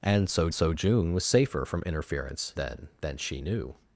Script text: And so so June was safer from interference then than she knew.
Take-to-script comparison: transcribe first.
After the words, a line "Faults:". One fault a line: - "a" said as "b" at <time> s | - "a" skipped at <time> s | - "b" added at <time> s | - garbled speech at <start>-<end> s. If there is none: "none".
And so so June was safer from interference then than she knew.
Faults:
none